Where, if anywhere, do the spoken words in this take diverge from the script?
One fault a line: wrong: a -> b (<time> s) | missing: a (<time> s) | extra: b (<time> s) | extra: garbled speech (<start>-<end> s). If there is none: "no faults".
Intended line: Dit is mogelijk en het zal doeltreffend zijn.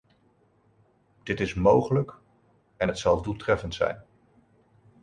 no faults